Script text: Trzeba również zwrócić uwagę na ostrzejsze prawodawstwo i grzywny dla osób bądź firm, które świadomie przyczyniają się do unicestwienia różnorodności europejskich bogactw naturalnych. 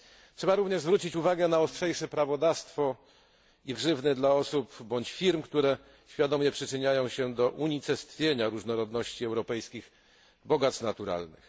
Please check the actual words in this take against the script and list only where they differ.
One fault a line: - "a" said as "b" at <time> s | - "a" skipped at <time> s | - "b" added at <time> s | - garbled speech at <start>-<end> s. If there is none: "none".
none